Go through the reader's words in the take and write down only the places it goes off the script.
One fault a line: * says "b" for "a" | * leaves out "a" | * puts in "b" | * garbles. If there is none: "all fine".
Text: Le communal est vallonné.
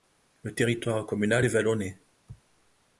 * puts in "territoire"